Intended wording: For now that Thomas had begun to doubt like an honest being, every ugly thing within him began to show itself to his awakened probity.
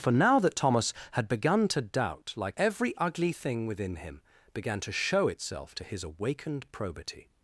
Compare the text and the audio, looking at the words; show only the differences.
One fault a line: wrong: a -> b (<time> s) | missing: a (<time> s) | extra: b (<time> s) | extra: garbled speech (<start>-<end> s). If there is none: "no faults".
missing: an honest being (2.6 s)